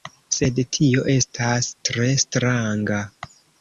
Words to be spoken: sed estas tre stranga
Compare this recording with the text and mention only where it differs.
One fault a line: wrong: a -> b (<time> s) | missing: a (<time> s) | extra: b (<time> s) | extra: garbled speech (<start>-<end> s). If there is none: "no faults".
extra: tio (0.8 s)